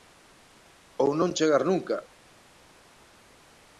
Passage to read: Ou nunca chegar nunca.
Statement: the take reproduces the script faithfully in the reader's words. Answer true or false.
false